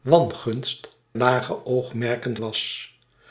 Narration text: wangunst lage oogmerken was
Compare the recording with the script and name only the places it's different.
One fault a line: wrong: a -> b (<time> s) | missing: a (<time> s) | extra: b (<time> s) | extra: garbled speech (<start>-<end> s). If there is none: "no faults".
no faults